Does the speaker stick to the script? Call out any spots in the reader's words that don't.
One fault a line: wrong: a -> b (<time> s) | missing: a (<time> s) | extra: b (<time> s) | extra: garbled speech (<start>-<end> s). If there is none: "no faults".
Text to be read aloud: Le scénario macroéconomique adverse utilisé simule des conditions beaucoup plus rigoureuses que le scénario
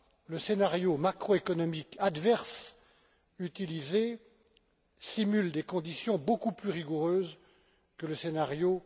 no faults